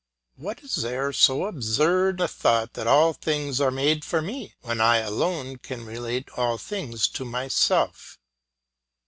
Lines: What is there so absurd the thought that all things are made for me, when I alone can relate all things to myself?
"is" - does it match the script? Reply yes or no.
yes